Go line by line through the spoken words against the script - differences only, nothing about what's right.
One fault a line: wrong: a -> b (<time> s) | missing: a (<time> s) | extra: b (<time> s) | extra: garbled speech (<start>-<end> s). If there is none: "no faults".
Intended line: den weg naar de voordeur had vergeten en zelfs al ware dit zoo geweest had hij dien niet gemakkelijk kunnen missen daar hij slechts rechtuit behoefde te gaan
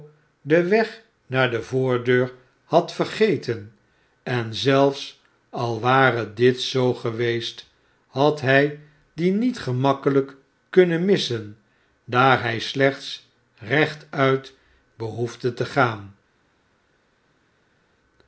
no faults